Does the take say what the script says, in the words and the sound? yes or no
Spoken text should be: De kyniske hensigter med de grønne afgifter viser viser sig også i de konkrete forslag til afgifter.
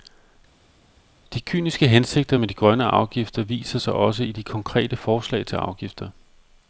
no